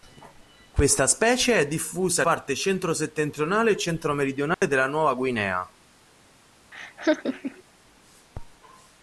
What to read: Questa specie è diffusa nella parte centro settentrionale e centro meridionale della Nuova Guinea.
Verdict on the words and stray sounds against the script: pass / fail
fail